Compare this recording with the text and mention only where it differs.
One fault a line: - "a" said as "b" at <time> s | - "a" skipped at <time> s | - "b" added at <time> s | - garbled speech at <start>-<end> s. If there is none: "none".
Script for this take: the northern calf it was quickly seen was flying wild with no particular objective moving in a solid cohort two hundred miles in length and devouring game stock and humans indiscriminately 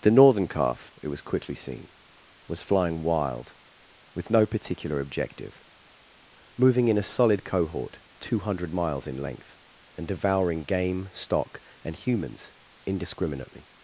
none